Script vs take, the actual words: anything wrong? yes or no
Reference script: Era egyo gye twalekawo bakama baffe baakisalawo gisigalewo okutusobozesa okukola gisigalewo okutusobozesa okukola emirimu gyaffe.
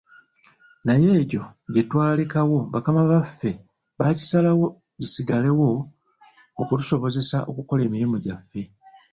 yes